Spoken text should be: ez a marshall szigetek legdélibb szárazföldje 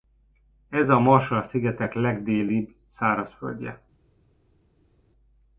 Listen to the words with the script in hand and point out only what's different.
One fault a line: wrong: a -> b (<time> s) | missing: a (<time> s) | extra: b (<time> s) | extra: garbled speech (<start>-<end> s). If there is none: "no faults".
no faults